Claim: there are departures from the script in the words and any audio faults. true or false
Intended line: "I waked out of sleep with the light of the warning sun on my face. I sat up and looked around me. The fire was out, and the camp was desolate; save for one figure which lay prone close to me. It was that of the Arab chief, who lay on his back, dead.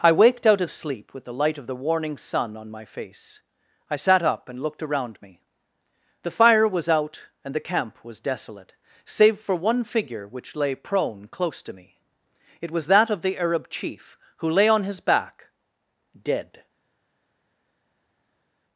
false